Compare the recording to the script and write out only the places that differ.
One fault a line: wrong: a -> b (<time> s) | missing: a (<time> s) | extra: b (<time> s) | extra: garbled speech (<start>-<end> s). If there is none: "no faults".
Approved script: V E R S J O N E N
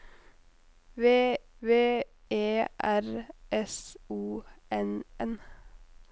extra: v (1.6 s)
missing: J (4.0 s)
missing: E (5.0 s)